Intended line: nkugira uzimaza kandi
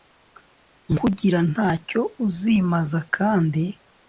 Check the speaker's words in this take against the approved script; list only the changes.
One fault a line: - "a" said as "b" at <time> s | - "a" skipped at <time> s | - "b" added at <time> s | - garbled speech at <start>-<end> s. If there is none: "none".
- "ntacyo" added at 1.5 s